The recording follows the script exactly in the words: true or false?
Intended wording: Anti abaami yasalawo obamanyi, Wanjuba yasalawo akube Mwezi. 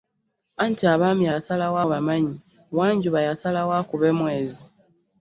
true